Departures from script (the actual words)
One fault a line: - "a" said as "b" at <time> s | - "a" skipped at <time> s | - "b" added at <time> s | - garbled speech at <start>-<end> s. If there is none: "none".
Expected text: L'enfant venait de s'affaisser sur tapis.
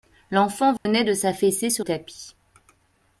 none